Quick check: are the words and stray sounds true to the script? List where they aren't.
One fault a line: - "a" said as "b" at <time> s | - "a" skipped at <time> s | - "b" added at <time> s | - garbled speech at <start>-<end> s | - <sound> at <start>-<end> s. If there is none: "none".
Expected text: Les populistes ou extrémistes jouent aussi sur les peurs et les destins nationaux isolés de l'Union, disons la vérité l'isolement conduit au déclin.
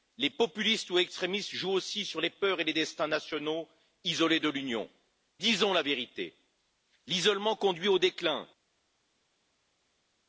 none